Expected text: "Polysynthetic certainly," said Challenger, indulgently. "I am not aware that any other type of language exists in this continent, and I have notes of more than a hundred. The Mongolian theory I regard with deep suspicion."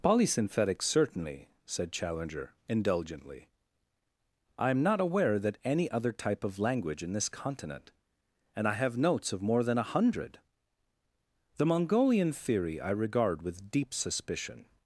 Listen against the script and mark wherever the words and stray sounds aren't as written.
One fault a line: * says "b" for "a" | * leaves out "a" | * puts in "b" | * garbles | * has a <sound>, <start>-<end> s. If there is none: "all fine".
* leaves out "exists"